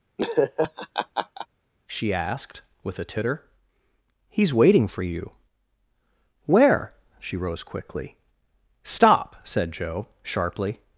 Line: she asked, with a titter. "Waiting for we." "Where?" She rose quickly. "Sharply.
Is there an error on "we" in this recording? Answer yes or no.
yes